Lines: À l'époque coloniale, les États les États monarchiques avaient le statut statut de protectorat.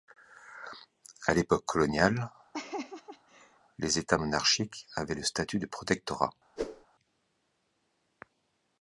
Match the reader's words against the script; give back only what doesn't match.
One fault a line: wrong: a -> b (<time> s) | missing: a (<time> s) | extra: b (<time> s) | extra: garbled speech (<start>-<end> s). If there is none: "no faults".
missing: les États (4.2 s)
missing: statut (5.6 s)